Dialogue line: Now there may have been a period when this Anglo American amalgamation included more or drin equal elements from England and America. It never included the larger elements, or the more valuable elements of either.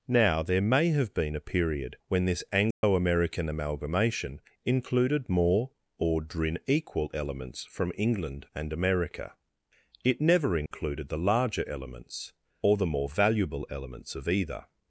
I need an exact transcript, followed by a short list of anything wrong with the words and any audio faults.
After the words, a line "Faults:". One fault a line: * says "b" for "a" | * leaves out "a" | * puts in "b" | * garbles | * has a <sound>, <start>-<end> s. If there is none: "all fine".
Now there may have been a period when this Anglo American amalgamation included more or drin equal elements from England and America. It never included the larger elements, or the more valuable elements of either.
Faults:
* has a dropout, 2.7-2.8 s
* has a dropout, 10.7-10.7 s